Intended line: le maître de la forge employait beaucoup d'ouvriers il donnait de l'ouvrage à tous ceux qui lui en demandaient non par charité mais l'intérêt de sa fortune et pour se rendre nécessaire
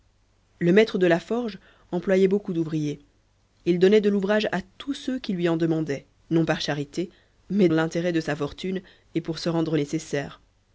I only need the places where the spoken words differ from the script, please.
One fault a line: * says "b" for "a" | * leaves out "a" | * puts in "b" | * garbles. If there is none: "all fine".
all fine